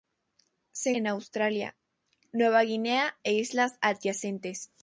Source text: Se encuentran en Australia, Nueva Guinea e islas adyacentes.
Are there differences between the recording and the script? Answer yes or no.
yes